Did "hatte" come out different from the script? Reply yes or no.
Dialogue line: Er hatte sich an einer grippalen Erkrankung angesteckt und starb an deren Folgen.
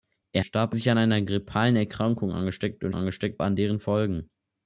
yes